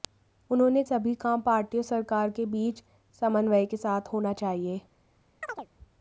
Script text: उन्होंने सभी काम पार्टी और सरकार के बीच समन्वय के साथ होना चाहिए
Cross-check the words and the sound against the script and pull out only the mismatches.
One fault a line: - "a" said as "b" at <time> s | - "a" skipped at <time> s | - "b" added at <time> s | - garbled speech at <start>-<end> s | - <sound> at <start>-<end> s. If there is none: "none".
- chirp at 5.4-5.7 s